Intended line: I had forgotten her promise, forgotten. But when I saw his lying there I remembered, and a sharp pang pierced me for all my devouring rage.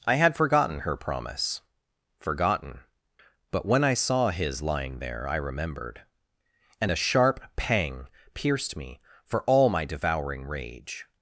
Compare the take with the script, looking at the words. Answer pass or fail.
pass